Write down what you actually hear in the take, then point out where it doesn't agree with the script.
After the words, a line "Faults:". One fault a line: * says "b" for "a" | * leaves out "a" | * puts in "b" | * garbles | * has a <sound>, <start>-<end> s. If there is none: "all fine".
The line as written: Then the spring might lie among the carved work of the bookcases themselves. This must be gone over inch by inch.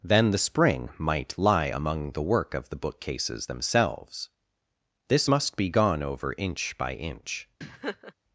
Then the spring might lie among the work of the bookcases themselves. This must be gone over inch by inch.
Faults:
* leaves out "carved"
* has a laugh, 7.6-8.1 s